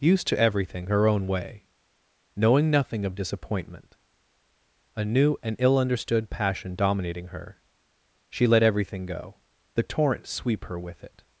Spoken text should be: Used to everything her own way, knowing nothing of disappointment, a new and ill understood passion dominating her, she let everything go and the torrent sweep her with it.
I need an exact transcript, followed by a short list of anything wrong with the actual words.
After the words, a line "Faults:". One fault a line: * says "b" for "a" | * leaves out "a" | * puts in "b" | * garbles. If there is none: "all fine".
Used to everything her own way, knowing nothing of disappointment, a new and ill understood passion dominating her, she let everything go the torrent sweep her with it.
Faults:
* leaves out "and"